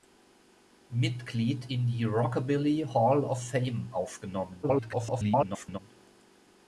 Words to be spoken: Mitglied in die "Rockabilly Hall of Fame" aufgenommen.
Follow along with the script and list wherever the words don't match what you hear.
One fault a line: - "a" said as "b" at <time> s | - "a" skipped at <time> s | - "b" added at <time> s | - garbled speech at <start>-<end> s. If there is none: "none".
- garbled speech at 4.6-5.8 s